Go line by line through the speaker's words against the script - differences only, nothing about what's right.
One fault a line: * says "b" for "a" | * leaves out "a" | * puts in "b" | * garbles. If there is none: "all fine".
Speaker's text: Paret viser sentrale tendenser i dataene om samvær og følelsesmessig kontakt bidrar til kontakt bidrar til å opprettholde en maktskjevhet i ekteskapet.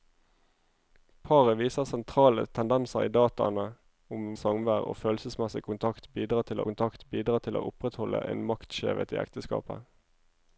all fine